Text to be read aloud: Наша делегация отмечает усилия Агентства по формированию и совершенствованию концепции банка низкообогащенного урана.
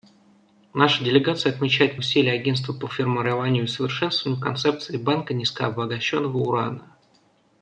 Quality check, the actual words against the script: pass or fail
pass